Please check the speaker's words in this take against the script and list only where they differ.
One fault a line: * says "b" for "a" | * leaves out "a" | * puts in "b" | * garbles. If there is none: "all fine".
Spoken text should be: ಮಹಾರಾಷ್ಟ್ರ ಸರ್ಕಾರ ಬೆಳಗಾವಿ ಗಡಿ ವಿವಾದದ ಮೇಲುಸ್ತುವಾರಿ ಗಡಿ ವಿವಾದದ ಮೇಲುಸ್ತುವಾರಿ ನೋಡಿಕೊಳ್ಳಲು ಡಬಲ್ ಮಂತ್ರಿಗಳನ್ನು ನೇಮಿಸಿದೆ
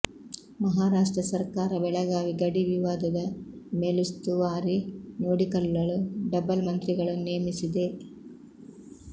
* leaves out "ಗಡಿ ವಿವಾದದ ಮೇಲುಸ್ತುವಾರಿ"